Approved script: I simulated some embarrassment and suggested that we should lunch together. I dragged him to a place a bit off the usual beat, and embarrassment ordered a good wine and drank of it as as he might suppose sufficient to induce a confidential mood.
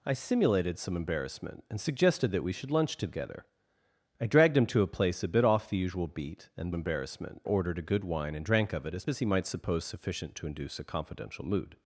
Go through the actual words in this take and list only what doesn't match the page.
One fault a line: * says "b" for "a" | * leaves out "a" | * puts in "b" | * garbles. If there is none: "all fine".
all fine